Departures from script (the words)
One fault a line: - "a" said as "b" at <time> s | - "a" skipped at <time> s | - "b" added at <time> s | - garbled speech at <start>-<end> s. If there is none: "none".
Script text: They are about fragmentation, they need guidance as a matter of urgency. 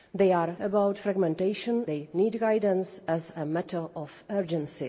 none